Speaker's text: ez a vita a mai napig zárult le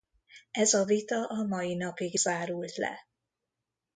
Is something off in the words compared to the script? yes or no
no